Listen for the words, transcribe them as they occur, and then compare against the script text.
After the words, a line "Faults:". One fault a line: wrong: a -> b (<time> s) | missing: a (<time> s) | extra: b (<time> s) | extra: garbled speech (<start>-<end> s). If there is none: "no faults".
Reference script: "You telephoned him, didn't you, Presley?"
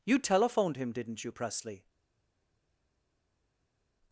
"You telephoned him, didn't you, Presley?"
Faults:
no faults